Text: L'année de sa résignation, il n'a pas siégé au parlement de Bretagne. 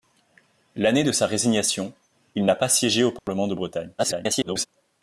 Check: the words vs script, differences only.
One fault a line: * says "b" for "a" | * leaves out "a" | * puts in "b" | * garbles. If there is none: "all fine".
* garbles